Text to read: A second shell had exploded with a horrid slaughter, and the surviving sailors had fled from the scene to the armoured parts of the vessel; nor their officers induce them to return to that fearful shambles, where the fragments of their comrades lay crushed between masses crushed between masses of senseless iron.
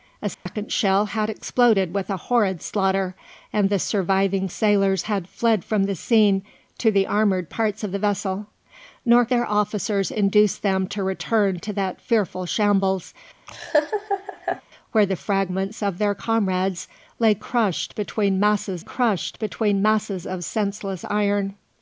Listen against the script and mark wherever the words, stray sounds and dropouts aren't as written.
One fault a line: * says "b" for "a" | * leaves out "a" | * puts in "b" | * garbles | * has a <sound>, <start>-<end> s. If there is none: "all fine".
* has a dropout, 0.3-0.5 s
* has a laugh, 13.5-14.6 s